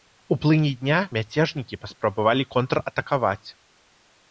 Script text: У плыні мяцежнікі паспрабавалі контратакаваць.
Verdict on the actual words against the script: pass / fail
fail